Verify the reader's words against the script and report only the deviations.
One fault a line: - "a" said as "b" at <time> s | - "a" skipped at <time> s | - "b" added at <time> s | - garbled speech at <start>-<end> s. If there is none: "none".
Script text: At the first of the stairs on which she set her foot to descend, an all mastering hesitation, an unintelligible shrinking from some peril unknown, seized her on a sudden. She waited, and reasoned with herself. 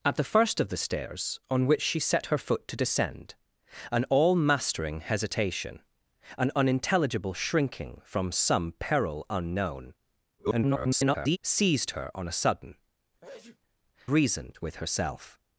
- garbled speech at 10.4-11.4 s
- "She waited and" skipped at 12.7 s